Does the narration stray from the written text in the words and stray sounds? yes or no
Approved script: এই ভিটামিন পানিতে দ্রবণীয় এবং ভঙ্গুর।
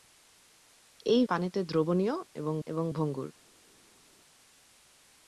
yes